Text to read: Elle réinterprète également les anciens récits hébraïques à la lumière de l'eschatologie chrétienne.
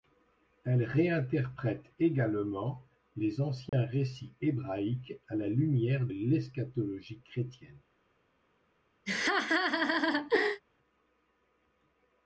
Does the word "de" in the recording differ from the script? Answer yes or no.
yes